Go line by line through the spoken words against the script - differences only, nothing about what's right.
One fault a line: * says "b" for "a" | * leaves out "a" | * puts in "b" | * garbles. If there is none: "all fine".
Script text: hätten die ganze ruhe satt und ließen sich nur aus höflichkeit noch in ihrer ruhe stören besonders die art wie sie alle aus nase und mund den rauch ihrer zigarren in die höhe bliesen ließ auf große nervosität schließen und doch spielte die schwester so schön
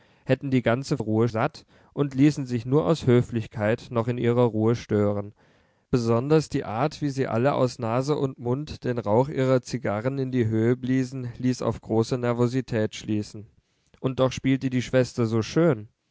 all fine